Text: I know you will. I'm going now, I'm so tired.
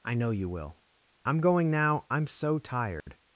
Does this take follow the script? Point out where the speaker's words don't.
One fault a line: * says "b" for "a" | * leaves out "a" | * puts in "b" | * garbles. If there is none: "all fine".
all fine